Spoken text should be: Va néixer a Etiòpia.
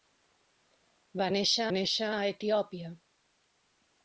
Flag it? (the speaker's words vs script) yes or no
yes